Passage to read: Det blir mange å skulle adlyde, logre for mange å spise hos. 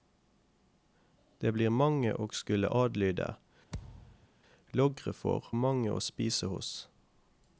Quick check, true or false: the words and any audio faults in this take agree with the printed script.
false